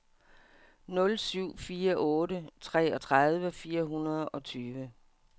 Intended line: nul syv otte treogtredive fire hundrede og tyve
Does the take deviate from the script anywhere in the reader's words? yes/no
yes